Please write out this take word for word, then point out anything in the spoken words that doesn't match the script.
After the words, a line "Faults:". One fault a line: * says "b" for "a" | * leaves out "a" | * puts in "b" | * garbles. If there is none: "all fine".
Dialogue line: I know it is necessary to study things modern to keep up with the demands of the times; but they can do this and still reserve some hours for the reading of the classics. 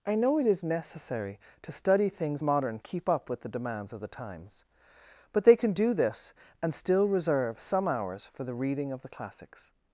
I know it is necessary to study things modern keep up with the demands of the times; but they can do this and still reserve some hours for the reading of the classics.
Faults:
* leaves out "to"